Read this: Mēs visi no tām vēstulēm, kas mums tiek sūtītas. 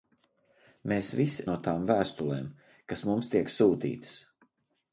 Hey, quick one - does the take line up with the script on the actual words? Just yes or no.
yes